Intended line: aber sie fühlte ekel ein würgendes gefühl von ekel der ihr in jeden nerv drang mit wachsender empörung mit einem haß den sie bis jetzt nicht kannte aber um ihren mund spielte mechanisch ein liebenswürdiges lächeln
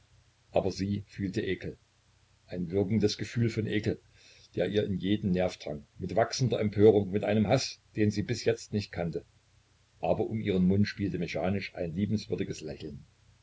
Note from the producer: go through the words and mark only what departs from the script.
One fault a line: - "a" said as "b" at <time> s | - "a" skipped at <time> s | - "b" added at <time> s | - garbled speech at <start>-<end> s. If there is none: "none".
none